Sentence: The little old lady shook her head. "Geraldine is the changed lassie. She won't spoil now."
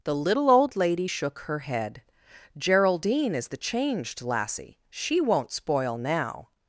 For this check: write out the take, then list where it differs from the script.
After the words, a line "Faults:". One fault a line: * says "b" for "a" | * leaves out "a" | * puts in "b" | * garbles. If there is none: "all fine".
The little old lady shook her head. "Geraldine is the changed lassie. She won't spoil now."
Faults:
all fine